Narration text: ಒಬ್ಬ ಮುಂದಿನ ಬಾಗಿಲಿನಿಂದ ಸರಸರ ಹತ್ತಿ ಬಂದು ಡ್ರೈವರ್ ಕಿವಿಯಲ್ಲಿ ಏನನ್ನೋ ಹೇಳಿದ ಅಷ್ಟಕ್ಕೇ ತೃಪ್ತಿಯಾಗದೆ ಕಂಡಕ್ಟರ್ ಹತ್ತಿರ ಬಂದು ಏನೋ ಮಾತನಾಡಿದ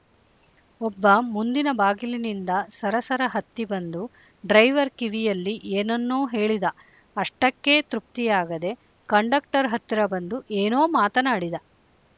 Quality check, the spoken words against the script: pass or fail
pass